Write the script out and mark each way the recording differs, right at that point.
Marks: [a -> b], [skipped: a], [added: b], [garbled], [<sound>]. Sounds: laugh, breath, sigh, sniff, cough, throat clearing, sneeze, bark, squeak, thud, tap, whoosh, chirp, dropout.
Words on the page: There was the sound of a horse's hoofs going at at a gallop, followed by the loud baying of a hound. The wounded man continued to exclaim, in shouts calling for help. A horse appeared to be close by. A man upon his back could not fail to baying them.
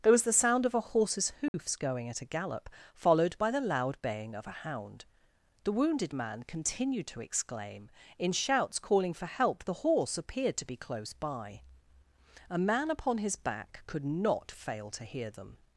There was the sound of a horse's hoofs [dropout] going at [skipped: at] a gallop, followed by the loud baying of a hound. The wounded man continued to exclaim, in shouts calling for help. [A -> The] horse appeared to be close by. A man upon his back could not fail to [baying -> hear] them.